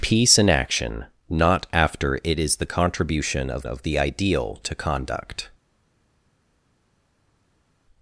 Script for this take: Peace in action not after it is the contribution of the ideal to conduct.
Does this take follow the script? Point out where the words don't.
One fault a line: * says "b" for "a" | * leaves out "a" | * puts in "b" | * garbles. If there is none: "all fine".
* puts in "of"